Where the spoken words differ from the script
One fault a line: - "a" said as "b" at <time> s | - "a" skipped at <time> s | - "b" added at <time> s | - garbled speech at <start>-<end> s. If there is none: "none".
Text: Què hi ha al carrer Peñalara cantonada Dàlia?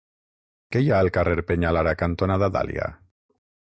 none